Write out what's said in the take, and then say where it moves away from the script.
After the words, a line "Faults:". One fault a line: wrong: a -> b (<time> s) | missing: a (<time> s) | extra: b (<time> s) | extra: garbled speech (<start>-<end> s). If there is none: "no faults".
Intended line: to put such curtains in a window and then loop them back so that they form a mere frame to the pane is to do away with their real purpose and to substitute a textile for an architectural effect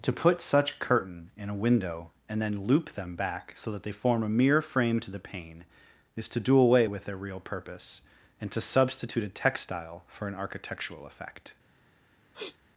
to put such curtain in a window and then loop them back so that they form a mere frame to the pane is to do away with their real purpose and to substitute a textile for an architectural effect
Faults:
wrong: curtains -> curtain (0.8 s)